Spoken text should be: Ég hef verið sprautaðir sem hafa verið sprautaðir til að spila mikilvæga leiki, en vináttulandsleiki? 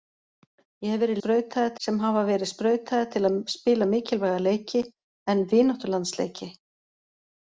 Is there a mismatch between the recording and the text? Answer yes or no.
no